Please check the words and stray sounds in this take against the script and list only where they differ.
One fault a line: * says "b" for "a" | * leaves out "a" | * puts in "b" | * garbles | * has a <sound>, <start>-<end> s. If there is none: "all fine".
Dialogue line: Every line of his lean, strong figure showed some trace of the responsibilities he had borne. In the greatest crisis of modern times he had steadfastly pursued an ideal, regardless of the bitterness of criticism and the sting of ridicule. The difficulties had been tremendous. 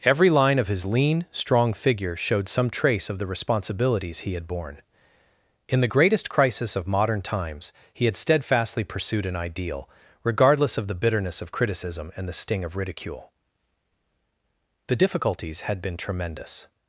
all fine